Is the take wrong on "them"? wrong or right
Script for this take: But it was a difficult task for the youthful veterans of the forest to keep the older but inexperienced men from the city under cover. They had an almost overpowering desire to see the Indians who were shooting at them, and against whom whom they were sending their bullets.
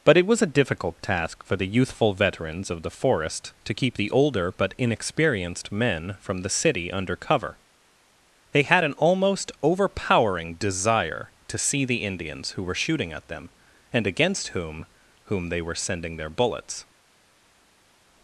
right